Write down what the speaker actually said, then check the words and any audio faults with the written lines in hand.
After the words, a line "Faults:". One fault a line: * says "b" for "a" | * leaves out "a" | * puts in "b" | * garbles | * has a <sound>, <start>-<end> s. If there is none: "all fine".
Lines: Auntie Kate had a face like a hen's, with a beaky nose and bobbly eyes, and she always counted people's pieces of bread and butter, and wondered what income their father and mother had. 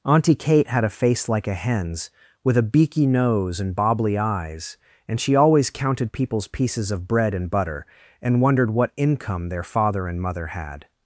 Auntie Kate had a face like a hen's, with a beaky nose and bobbly eyes, and she always counted people's pieces of bread and butter, and wondered what income their father and mother had.
Faults:
all fine